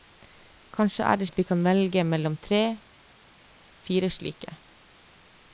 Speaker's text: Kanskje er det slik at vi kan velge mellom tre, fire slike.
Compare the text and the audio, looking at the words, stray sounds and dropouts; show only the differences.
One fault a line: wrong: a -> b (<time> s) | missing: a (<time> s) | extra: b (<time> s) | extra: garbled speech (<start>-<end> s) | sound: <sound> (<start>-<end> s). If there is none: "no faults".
missing: slik (1.3 s)